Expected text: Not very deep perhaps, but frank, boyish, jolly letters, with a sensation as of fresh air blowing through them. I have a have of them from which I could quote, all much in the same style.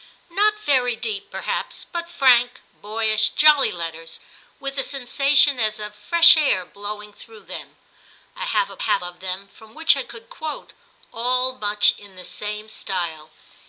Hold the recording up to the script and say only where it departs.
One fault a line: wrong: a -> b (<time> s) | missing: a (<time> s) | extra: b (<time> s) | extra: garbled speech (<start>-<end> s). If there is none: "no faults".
no faults